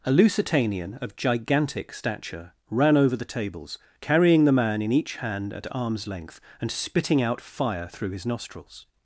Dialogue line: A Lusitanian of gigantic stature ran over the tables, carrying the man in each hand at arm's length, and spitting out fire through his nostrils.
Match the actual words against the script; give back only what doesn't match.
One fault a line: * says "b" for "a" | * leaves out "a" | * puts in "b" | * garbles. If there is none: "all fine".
all fine